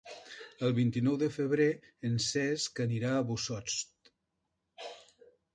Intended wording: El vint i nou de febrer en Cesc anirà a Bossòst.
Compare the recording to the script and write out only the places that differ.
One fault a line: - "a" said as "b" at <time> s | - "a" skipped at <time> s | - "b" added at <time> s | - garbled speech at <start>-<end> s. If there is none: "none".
none